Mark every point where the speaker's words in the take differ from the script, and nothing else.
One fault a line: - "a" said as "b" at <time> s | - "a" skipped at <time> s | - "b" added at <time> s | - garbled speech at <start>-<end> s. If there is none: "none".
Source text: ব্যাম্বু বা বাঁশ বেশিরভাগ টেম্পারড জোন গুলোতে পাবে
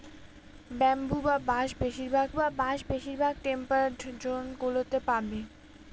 - "বা বাঁশ বেশিরভাগ" added at 2.3 s